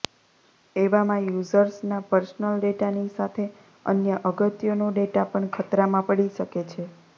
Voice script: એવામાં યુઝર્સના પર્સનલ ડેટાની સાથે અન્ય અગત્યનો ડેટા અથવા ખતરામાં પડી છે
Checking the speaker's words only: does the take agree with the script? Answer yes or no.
no